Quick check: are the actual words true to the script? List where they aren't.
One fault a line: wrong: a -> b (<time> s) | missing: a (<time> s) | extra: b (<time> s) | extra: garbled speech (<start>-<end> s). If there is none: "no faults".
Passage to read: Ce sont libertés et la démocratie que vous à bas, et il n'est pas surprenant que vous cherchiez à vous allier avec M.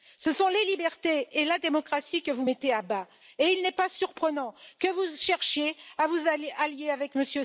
extra: les (0.5 s)
extra: mettez (2.4 s)